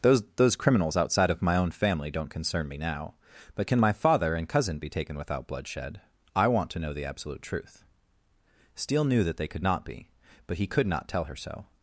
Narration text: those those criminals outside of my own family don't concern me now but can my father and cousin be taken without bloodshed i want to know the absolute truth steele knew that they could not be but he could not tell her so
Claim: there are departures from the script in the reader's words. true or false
false